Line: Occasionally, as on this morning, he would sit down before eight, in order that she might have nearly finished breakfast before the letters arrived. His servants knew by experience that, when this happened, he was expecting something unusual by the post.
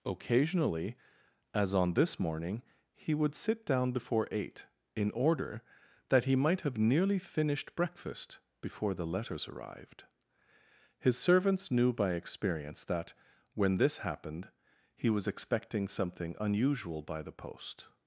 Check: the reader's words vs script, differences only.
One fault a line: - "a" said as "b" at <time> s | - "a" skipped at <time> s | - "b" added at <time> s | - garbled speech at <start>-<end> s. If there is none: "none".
- "she" said as "he" at 6.2 s